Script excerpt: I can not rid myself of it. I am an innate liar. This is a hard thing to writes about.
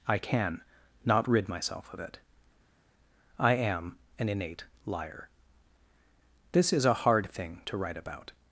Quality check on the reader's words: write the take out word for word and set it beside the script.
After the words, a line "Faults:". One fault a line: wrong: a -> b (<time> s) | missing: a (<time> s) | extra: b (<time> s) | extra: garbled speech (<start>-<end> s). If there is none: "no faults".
I can not rid myself of it. I am an innate liar. This is a hard thing to write about.
Faults:
wrong: writes -> write (7.8 s)